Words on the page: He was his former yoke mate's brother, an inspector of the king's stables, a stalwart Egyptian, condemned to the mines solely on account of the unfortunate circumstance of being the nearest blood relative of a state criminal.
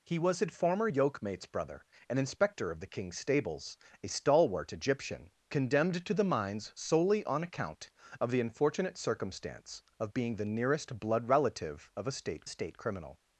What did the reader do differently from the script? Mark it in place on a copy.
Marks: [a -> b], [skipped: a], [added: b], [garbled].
He was his former yoke mate's brother, an inspector of the king's stables, a stalwart Egyptian, condemned to the mines solely on account of the unfortunate circumstance of being the nearest blood relative of a state [added: state] criminal.